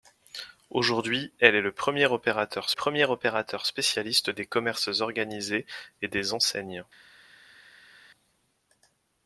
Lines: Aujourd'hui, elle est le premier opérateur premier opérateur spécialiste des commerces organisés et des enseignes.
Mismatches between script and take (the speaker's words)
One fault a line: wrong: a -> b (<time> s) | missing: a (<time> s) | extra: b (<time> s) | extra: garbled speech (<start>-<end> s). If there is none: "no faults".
no faults